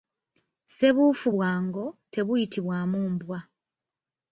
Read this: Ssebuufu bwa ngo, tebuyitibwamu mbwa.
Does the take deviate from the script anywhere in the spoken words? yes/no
no